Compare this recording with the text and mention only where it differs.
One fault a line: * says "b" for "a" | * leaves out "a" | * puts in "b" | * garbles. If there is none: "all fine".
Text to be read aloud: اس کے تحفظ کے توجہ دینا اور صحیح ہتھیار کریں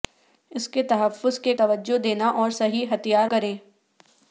all fine